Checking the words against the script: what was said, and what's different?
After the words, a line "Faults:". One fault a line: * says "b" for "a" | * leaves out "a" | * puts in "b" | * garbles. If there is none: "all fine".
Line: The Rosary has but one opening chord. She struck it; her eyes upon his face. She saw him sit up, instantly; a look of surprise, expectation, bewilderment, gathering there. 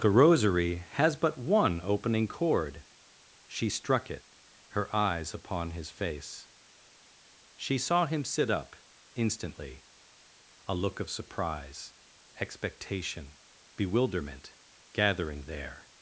The Rosary has but one opening chord. She struck it; her eyes upon his face. She saw him sit up, instantly; a look of surprise, expectation, bewilderment, gathering there.
Faults:
all fine